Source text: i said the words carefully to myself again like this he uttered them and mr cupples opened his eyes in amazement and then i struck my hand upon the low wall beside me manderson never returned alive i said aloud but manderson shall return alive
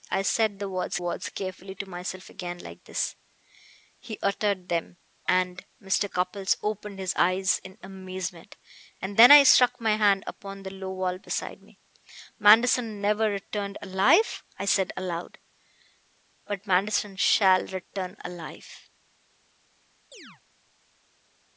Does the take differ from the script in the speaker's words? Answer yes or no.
yes